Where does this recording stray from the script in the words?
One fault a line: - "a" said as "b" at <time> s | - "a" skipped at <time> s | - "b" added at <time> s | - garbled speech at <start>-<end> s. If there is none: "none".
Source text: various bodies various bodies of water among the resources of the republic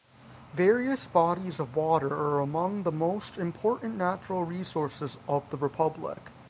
- "various bodies" skipped at 1.6 s
- "are" added at 2.1 s
- "most important natural" added at 2.9 s